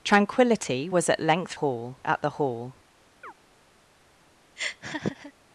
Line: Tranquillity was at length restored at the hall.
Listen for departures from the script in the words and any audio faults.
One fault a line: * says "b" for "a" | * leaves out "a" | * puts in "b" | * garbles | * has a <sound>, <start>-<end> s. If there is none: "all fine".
* says "hall" for "restored"
* has a chirp, 3.2-3.3 s
* has a laugh, 4.6-5.3 s